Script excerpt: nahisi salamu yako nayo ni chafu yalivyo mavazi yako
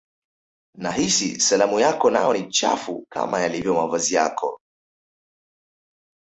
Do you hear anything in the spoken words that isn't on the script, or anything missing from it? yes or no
yes